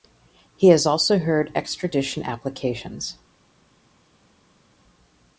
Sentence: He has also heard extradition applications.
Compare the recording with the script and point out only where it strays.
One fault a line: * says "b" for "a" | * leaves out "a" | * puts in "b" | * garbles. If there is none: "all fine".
all fine